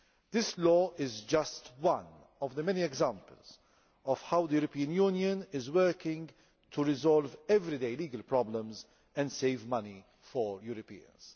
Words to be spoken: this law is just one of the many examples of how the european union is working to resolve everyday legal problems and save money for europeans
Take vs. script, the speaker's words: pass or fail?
pass